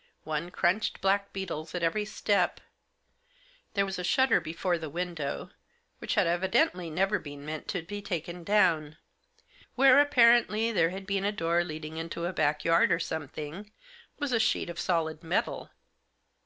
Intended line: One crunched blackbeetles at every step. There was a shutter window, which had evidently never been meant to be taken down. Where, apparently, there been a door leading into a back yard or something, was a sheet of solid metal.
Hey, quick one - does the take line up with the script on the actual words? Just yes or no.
no